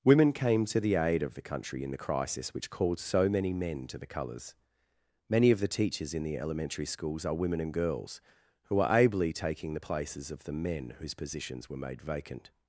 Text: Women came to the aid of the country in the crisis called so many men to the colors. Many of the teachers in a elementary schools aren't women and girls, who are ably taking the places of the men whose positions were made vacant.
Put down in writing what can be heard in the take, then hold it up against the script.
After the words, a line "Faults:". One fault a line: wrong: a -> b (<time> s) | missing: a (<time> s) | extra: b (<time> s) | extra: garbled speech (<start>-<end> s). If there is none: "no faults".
Women came to the aid of the country in the crisis which called so many men to the colors. Many of the teachers in the elementary schools are women and girls, who are ably taking the places of the men whose positions were made vacant.
Faults:
extra: which (2.5 s)
wrong: a -> the (6.2 s)
wrong: aren't -> are (7.2 s)